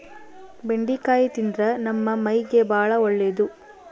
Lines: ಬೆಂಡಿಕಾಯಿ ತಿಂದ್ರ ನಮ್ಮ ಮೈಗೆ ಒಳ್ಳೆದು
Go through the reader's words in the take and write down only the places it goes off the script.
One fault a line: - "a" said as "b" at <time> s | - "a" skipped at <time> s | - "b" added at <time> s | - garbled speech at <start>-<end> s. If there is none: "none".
- "ಬಾಳ" added at 2.7 s